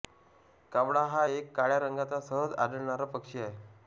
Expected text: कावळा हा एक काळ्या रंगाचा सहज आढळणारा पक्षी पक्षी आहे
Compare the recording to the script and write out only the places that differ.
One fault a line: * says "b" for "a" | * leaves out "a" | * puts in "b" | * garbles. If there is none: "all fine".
* leaves out "पक्षी"